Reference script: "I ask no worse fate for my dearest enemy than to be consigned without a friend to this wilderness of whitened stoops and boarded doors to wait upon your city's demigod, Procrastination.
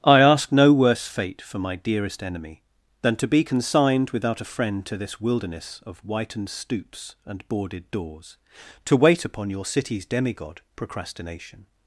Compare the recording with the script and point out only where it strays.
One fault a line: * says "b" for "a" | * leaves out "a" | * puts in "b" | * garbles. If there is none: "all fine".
all fine